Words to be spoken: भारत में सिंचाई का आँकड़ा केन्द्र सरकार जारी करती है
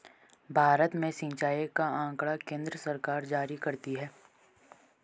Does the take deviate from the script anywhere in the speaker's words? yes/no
no